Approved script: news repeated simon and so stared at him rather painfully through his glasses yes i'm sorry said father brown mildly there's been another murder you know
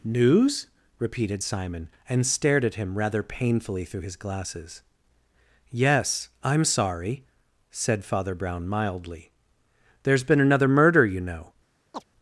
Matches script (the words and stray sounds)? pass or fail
fail